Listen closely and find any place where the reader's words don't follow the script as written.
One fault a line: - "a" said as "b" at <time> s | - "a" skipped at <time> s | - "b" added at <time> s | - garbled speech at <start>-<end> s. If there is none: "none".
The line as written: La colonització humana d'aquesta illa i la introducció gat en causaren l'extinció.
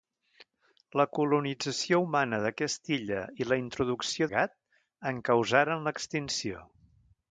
none